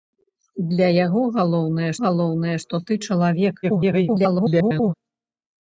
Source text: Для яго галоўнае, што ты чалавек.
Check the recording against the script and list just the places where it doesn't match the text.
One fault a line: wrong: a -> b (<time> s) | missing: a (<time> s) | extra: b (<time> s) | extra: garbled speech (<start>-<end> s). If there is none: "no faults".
extra: галоўнае (2.0 s)
extra: garbled speech (3.6-4.9 s)